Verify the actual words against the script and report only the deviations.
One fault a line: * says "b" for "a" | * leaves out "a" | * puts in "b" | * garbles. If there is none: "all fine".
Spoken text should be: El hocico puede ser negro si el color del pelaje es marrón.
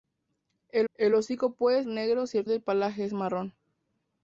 * puts in "el"
* leaves out "ser"
* leaves out "color"